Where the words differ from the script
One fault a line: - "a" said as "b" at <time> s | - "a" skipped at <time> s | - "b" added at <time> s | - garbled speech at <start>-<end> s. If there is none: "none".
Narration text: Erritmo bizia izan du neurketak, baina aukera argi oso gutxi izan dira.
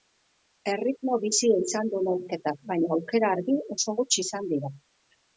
none